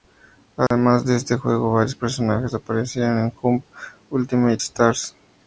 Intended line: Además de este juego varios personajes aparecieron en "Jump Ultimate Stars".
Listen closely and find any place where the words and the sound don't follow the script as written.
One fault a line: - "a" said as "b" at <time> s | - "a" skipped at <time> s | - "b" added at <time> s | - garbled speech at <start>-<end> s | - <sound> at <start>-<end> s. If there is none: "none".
- dropout at 0.7-0.7 s